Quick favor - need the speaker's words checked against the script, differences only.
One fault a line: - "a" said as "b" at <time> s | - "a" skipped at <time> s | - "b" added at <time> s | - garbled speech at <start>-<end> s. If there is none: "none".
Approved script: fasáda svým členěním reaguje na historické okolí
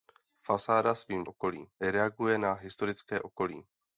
- "členěním" said as "okolí" at 1.2 s